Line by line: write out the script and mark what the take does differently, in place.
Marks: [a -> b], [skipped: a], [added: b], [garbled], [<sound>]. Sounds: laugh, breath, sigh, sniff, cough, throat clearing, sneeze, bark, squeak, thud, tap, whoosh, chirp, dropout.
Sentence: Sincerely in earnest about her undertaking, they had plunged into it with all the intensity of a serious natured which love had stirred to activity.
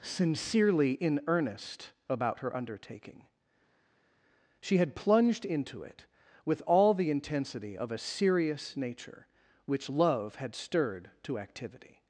Sincerely in earnest about her undertaking, [they -> she] had plunged into it with all the intensity of a serious [natured -> nature] which love had stirred to activity.